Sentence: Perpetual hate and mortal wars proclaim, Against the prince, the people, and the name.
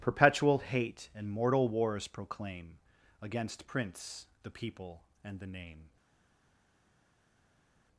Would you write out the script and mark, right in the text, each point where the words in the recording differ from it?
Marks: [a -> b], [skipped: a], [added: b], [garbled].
Perpetual hate and mortal wars proclaim, Against [skipped: the] prince, the people, and the name.